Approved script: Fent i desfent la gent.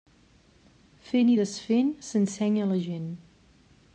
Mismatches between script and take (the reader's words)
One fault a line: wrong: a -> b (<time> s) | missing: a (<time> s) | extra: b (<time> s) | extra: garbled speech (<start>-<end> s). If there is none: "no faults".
extra: s'ensenya (2.1 s)